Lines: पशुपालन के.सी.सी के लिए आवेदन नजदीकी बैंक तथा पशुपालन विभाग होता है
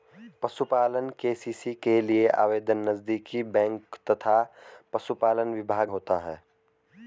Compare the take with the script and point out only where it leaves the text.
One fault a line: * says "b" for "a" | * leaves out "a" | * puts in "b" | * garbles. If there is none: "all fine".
all fine